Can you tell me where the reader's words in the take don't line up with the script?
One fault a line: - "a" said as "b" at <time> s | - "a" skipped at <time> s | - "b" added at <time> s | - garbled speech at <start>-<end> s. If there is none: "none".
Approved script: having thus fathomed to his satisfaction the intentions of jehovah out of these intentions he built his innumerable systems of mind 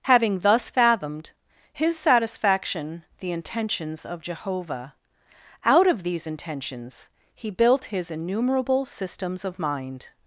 - "to" skipped at 1.3 s